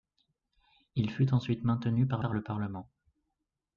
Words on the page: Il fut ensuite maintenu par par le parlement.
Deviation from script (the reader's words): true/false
false